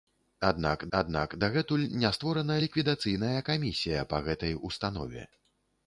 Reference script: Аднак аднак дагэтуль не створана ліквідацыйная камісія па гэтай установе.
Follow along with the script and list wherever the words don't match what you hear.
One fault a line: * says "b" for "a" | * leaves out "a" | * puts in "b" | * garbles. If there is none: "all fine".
all fine